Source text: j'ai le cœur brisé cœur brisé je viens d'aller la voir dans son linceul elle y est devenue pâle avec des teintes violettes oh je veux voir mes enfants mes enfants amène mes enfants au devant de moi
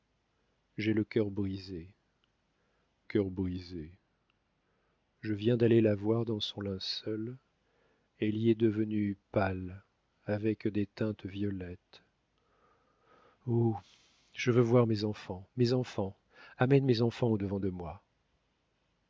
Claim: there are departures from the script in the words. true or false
false